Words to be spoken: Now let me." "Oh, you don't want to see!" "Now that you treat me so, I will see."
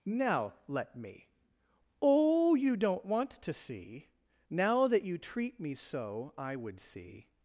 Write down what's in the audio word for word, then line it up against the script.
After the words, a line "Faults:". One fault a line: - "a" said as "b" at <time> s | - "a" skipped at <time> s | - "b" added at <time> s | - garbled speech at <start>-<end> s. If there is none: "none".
Now let me." "Oh, you don't want to see!" "Now that you treat me so, I would see."
Faults:
- "will" said as "would" at 6.6 s